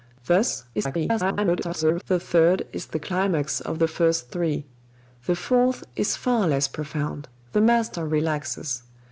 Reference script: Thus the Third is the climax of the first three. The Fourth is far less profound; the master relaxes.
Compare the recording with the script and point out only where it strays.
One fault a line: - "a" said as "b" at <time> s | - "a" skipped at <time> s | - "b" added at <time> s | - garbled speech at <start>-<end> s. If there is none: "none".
- garbled speech at 0.7-2.0 s